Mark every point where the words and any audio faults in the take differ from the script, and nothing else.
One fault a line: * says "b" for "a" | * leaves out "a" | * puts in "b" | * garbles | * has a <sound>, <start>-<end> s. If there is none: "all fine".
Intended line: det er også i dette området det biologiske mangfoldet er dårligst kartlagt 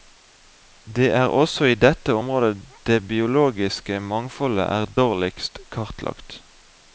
all fine